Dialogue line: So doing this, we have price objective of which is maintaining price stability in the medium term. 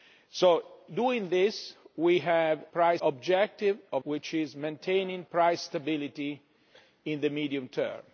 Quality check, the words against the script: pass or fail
pass